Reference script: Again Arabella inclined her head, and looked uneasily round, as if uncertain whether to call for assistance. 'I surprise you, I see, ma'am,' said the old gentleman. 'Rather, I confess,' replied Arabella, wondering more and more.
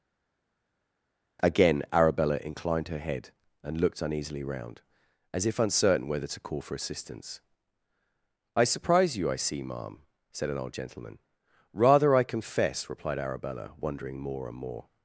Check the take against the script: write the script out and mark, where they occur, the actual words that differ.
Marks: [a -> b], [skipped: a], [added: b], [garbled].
Again Arabella inclined her head, and looked uneasily round, as if uncertain whether to call for assistance. 'I surprise you, I see, ma'am,' said [the -> an] old gentleman. 'Rather, I confess,' replied Arabella, wondering more and more.